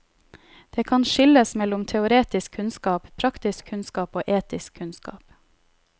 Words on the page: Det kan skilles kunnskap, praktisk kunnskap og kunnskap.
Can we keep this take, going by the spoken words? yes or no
no